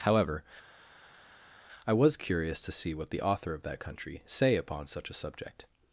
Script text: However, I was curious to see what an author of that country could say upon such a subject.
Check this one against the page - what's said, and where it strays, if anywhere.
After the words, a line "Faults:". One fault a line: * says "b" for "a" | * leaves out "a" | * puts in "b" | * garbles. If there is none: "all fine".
However, I was curious to see what the author of that country say upon such a subject.
Faults:
* says "the" for "an"
* leaves out "could"